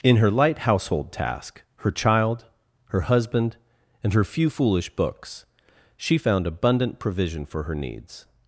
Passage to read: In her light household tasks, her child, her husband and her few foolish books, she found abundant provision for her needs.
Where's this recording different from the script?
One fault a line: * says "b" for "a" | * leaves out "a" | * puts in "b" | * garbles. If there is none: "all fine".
* says "task" for "tasks"